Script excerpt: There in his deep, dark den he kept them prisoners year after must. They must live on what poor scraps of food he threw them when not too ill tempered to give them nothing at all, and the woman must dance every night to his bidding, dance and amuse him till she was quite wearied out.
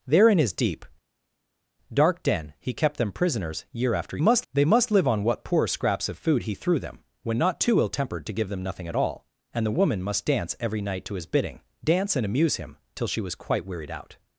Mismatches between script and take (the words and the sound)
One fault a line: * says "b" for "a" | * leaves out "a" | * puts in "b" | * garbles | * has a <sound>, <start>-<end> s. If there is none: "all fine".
all fine